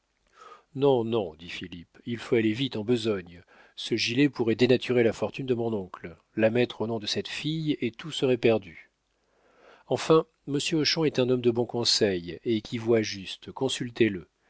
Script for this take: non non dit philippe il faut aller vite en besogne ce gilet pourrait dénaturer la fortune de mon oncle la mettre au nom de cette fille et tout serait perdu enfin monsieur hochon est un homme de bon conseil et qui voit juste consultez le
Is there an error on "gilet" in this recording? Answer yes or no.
no